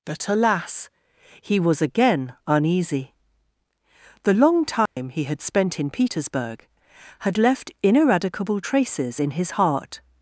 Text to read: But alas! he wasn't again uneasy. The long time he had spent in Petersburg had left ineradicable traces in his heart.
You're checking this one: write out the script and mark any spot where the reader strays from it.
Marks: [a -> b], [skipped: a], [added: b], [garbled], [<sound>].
But alas! he [wasn't -> was] again uneasy. The long time [dropout] he had spent in Petersburg had left ineradicable traces in his heart.